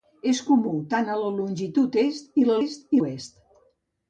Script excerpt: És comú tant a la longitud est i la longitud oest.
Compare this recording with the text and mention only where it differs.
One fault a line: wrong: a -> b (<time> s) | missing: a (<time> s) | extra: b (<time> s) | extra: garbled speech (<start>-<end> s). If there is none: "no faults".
wrong: longitud -> est (2.6 s)